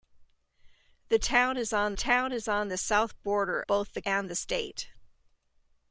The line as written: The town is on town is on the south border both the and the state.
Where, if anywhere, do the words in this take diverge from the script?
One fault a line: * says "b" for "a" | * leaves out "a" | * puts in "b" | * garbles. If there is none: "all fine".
all fine